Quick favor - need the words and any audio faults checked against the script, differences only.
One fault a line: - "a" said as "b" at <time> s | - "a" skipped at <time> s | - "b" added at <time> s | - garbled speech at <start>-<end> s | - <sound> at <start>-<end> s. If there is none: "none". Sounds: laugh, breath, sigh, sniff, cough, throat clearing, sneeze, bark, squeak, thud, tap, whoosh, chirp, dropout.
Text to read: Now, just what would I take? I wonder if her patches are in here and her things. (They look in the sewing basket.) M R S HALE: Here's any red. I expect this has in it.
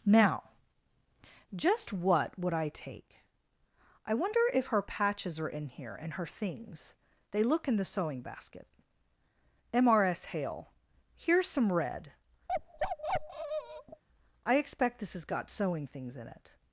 - "any" said as "some" at 11.5 s
- bark at 12.5-14.0 s
- "got sewing things" added at 15.2 s